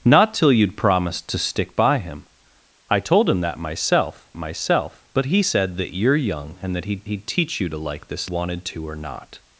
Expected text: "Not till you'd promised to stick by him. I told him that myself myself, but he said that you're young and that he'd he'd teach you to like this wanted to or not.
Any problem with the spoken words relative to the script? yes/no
no